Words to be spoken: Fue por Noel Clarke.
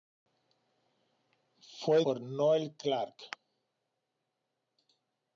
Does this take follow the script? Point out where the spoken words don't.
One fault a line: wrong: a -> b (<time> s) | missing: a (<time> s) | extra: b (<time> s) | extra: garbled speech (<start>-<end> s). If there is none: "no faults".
no faults